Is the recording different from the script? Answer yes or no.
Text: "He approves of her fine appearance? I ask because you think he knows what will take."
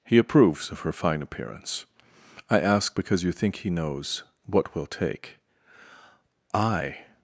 yes